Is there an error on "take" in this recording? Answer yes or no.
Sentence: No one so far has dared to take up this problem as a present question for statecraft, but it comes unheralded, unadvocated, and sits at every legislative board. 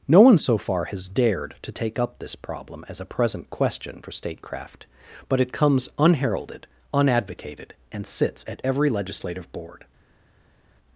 no